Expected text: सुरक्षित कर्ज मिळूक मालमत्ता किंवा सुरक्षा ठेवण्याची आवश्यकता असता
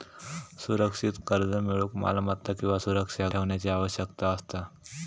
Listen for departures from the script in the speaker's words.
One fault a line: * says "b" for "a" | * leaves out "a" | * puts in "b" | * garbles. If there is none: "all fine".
all fine